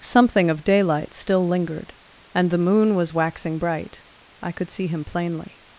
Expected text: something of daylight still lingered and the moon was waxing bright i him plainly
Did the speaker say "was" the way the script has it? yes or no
yes